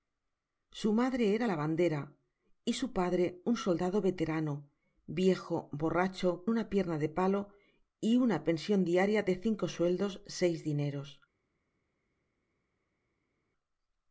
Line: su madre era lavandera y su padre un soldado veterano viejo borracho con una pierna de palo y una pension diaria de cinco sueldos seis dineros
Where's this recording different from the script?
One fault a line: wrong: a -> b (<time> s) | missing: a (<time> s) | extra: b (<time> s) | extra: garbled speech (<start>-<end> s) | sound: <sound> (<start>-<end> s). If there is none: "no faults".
missing: con (6.5 s)